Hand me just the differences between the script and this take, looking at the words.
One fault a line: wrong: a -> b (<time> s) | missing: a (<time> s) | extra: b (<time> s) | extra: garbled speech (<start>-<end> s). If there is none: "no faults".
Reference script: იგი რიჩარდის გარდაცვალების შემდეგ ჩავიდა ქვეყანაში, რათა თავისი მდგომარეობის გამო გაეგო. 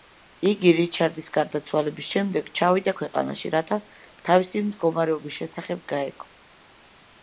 wrong: გამო -> შესახებ (5.4 s)